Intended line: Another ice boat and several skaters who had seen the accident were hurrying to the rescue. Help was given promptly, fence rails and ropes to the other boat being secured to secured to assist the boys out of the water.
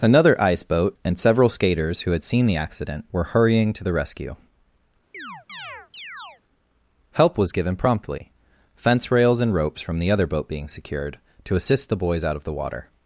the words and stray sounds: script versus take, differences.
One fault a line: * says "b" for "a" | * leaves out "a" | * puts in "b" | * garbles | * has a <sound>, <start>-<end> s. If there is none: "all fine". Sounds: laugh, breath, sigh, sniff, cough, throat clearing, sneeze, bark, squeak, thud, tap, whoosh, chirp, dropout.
* has a chirp, 5.1-6.4 s
* says "from" for "to"
* leaves out "secured to"